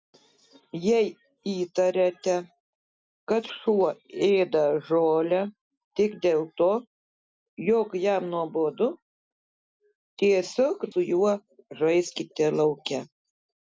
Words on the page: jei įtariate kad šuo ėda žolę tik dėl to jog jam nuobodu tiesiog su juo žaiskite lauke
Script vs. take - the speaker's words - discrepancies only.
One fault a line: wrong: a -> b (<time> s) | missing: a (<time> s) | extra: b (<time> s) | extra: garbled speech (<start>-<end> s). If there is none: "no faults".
no faults